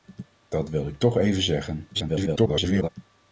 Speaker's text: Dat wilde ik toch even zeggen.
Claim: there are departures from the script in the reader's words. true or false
true